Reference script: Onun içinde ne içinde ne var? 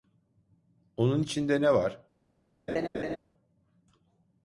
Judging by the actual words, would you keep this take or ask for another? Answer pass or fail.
fail